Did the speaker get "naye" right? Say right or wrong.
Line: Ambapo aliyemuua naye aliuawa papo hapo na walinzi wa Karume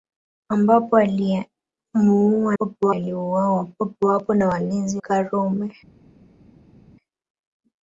wrong